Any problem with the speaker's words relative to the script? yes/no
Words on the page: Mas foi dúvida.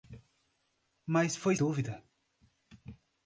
no